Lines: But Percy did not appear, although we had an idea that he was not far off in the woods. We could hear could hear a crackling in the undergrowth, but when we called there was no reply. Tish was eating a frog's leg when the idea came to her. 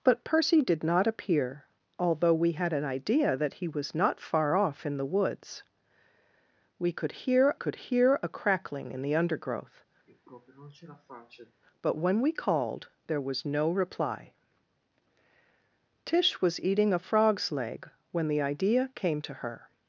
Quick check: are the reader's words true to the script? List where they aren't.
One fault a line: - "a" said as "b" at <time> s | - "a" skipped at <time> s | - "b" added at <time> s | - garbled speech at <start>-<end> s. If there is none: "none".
none